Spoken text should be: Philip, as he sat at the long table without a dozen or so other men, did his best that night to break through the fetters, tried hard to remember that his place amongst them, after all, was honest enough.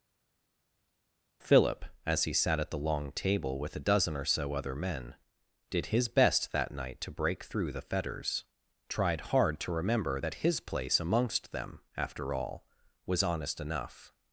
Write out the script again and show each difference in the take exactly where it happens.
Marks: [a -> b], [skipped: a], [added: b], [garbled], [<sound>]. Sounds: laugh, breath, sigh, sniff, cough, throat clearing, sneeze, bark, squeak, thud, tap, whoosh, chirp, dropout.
Philip, as he sat at the long table [without -> with] a dozen or so other men, did his best that night to break through the fetters, tried hard to remember that his place amongst them, after all, was honest enough.